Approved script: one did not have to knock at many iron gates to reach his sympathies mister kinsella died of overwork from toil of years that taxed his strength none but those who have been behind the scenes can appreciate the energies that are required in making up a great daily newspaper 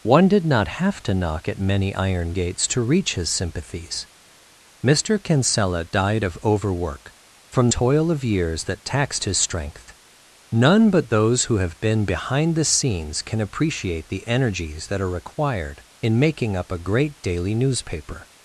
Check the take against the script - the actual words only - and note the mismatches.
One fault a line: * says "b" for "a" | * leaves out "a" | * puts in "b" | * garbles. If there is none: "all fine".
all fine